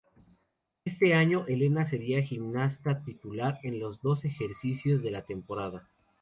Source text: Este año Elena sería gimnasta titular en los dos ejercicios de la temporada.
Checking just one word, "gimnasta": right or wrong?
right